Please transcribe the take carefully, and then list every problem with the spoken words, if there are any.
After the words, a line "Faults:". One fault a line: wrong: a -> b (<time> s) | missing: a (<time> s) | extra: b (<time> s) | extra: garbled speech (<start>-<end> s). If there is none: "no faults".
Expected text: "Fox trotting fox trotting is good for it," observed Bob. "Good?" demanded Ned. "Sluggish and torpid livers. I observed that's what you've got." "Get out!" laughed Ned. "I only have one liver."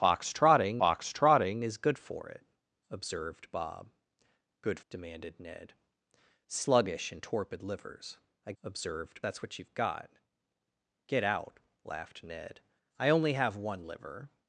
"Fox trotting fox trotting is good for it," observed Bob. "Good?" demanded Ned. "Sluggish and torpid livers. I observed that's what you've got." "Get out!" laughed Ned. "I only have one liver."
Faults:
no faults